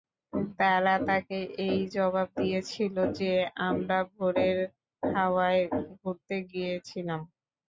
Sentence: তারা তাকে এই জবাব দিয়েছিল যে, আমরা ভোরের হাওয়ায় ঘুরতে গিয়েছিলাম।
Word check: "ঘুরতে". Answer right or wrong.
right